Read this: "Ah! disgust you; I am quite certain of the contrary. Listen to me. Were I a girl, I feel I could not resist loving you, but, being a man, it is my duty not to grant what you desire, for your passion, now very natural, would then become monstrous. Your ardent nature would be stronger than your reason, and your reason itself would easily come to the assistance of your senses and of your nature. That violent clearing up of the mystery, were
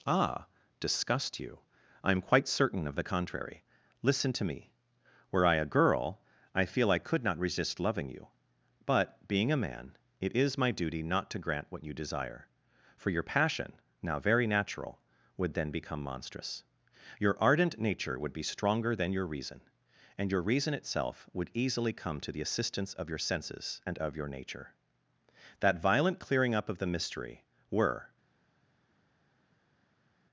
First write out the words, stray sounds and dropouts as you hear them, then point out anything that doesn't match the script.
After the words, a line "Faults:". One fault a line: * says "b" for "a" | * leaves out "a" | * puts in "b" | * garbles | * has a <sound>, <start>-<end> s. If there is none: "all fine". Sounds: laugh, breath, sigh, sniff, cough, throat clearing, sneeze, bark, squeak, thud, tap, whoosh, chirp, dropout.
"Ah! disgust you; I am quite certain of the contrary. Listen to me. Were I a girl, I feel I could not resist loving you, but, being a man, it is my duty not to grant what you desire, for your passion, now very natural, would then become monstrous. Your ardent nature would be stronger than your reason, and your reason itself would easily come to the assistance of your senses and of your nature. That violent clearing up of the mystery, were
Faults:
all fine